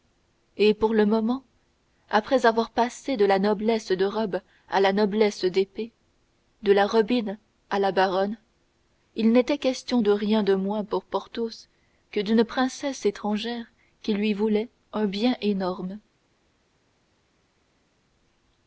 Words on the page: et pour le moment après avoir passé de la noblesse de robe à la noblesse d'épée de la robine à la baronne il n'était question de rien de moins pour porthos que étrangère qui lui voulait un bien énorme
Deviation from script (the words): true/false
true